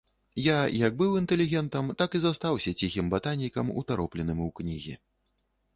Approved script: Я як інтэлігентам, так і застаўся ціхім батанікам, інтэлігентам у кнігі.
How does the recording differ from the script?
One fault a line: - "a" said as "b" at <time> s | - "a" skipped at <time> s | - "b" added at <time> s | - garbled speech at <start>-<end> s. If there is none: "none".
- "быў" added at 1.0 s
- "інтэлігентам" said as "утаропленым" at 3.8 s